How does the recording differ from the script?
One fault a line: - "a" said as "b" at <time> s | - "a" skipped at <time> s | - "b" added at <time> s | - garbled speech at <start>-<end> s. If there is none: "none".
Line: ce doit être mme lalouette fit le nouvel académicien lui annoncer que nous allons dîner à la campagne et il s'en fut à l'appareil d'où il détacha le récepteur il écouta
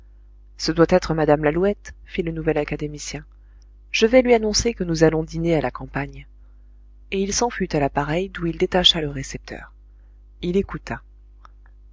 - "je vais" added at 3.9 s